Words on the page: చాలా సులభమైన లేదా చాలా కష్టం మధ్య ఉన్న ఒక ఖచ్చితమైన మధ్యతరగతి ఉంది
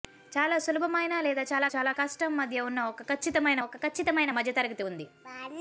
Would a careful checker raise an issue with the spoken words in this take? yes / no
yes